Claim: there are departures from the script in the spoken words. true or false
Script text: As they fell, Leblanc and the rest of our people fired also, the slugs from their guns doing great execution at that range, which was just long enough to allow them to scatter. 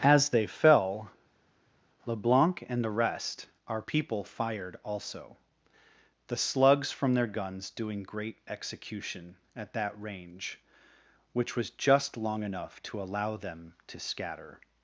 true